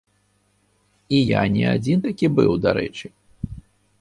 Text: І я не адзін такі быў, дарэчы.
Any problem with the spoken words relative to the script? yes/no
no